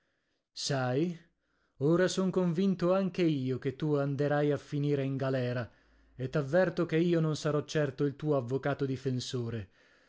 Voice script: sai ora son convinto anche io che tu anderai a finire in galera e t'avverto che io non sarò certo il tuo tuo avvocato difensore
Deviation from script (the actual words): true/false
true